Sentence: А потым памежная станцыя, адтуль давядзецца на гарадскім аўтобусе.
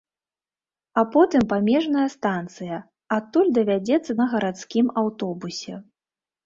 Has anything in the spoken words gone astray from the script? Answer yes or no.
no